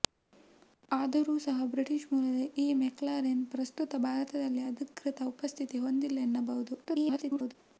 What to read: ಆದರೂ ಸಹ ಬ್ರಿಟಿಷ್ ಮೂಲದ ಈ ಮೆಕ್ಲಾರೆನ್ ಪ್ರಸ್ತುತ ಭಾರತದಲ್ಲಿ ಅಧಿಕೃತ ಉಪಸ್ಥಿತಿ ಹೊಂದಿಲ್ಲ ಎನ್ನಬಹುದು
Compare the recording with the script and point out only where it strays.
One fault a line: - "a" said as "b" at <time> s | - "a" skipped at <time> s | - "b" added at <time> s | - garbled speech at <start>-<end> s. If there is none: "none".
- garbled speech at 6.8-7.6 s